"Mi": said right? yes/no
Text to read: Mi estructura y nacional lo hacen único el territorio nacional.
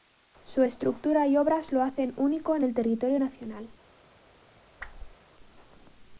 no